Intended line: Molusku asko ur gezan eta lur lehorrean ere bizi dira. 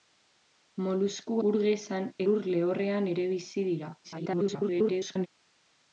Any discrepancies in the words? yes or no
yes